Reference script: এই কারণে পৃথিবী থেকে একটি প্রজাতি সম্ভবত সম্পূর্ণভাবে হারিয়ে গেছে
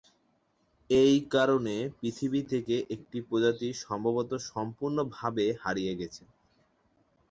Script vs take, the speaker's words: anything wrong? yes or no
no